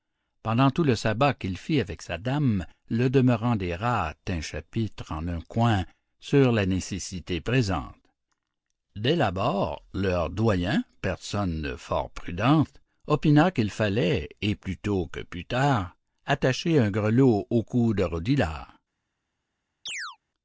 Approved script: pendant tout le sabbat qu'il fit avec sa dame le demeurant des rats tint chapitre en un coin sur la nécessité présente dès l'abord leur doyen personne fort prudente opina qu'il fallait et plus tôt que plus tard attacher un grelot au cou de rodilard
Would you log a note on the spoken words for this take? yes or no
no